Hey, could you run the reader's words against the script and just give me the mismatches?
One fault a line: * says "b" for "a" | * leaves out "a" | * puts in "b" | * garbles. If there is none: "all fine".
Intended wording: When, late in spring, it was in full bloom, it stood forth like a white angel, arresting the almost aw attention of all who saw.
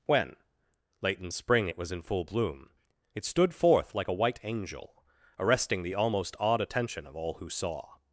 * says "awed" for "aw"